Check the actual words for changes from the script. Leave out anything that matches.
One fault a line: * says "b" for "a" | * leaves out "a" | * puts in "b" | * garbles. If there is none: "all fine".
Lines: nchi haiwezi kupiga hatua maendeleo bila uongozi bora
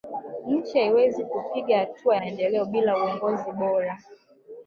all fine